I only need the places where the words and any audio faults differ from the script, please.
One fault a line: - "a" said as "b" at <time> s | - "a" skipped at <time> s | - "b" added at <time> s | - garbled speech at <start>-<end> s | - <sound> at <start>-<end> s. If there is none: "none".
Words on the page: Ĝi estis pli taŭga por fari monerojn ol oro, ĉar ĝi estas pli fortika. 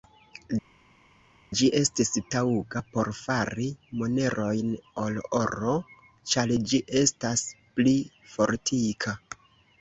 - "pli" skipped at 2.1 s